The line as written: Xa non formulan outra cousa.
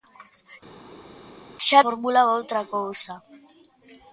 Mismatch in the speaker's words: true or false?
true